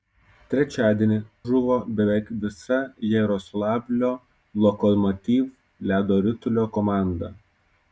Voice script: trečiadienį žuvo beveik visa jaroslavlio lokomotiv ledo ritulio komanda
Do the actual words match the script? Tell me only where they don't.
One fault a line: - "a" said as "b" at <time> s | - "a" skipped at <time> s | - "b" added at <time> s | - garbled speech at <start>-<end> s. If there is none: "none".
none